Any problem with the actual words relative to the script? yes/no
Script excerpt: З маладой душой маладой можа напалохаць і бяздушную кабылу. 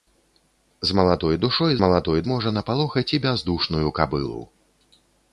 no